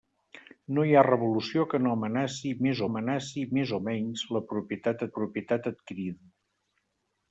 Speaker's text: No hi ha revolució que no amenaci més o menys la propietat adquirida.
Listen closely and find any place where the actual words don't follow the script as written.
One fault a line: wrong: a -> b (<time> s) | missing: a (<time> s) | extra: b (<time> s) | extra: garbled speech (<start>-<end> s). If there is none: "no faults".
extra: amenaci més (2.9 s)
extra: propietat (5.2 s)